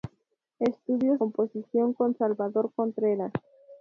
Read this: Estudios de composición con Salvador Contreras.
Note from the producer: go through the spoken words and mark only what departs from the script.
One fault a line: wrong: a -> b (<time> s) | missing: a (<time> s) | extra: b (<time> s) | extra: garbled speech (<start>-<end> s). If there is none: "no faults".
missing: de (1.2 s)